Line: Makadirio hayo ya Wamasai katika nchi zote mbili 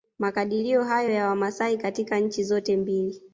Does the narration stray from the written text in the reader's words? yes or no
no